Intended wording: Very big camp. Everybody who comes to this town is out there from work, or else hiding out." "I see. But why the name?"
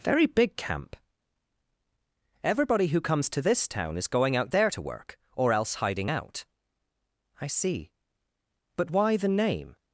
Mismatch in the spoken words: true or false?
true